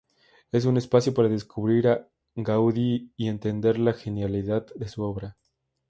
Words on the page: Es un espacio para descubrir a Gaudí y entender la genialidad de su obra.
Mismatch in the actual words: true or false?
false